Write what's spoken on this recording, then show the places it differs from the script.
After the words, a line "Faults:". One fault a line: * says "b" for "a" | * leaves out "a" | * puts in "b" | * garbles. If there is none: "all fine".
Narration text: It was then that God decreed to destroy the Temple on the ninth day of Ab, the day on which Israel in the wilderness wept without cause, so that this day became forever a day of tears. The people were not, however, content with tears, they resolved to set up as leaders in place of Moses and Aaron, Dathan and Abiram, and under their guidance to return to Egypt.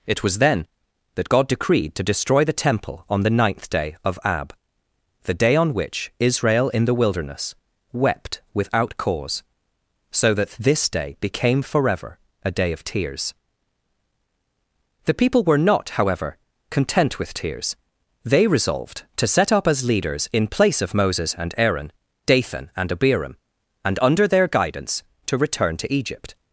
It was then that God decreed to destroy the Temple on the ninth day of Ab, the day on which Israel in the wilderness wept without cause, so that this day became forever a day of tears. The people were not, however, content with tears, they resolved to set up as leaders in place of Moses and Aaron, Dathan and Abiram, and under their guidance to return to Egypt.
Faults:
all fine